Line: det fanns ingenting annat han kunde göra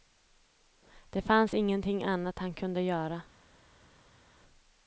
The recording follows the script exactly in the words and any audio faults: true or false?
true